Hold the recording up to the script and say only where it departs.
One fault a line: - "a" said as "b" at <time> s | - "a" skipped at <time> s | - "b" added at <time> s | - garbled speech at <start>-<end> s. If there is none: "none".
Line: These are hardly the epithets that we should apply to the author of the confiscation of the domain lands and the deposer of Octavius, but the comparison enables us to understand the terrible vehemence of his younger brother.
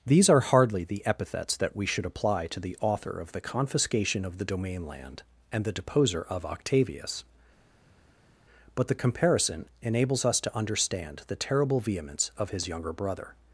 - "lands" said as "land" at 4.9 s